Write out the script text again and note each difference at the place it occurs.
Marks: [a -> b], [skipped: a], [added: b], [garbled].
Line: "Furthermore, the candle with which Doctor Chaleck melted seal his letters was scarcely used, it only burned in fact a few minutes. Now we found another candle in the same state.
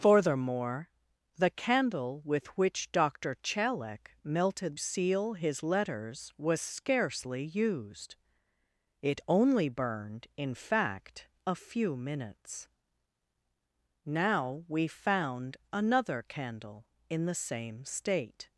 "Furthermore, the candle with which Doctor Chaleck melted seal his letters was scarcely used, it only burned in fact a few minutes. Now we found another candle in the same state.